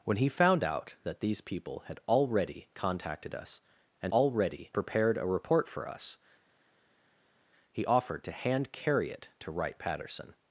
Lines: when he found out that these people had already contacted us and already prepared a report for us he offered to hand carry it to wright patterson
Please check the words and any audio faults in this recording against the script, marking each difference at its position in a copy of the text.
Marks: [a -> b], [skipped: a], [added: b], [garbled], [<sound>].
when he found out that these people had already contacted us and already prepared a report for us he offered to hand carry it to wright patterson